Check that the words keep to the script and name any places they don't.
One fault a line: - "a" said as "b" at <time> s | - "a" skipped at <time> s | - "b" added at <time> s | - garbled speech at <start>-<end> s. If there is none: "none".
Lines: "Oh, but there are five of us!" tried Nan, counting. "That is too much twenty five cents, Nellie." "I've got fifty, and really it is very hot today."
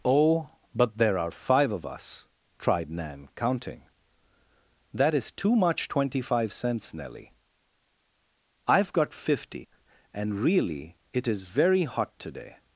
none